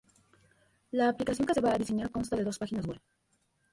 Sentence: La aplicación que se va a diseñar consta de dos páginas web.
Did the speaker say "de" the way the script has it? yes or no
yes